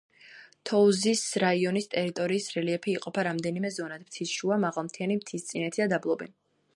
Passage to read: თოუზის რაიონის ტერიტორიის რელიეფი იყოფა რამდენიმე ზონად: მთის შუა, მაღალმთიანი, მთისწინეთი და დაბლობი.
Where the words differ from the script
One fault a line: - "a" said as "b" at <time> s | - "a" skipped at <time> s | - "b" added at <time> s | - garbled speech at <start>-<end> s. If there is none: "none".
none